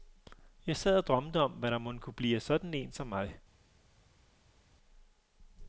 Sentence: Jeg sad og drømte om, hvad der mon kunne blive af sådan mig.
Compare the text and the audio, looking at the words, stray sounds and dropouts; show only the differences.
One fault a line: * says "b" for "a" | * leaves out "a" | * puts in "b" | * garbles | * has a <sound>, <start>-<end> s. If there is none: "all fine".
* puts in "en som"